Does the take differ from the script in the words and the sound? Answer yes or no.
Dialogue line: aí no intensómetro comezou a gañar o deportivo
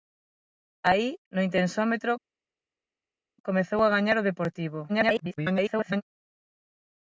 yes